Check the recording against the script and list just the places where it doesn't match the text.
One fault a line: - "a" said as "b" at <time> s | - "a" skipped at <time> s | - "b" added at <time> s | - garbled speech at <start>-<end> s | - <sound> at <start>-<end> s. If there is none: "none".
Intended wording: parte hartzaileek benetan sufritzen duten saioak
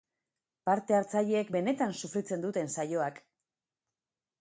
none